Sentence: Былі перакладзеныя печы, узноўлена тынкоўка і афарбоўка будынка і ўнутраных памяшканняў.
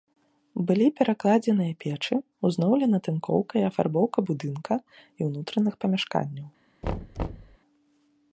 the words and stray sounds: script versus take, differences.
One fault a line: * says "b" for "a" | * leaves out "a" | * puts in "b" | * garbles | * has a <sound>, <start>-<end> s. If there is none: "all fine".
* has a thud, 6.8-7.6 s